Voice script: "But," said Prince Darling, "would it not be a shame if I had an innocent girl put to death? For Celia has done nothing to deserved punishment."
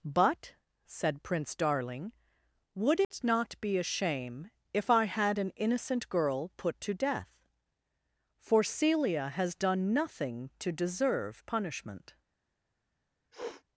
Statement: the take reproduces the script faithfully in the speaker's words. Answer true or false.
false